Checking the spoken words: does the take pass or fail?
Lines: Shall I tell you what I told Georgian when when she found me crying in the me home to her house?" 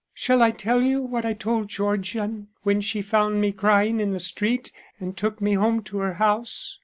fail